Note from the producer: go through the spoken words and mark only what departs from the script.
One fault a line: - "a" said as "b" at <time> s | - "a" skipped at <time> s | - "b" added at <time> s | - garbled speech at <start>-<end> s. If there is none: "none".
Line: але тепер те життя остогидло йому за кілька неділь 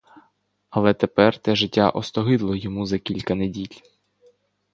none